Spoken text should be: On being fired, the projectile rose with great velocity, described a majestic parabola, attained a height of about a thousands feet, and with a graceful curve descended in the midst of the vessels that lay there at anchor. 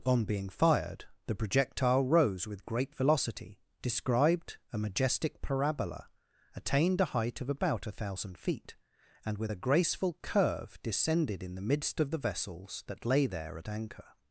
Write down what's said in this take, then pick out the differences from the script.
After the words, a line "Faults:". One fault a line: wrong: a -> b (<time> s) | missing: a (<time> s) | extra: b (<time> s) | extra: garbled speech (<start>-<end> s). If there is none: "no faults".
On being fired, the projectile rose with great velocity, described a majestic parabola, attained a height of about a thousand feet, and with a graceful curve descended in the midst of the vessels that lay there at anchor.
Faults:
wrong: thousands -> thousand (7.9 s)